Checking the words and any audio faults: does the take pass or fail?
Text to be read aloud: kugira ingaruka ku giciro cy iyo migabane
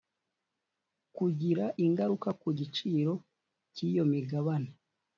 pass